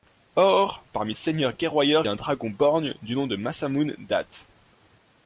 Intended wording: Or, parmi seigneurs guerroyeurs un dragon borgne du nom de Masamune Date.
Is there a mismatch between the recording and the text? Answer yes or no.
no